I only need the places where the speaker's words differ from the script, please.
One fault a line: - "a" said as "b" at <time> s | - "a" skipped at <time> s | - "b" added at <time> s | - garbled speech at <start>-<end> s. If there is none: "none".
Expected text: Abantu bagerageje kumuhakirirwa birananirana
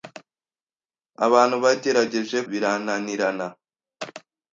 - "kumuhakirirwa" skipped at 2.4 s